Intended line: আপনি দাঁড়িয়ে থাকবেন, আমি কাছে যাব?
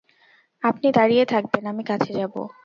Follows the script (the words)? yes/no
yes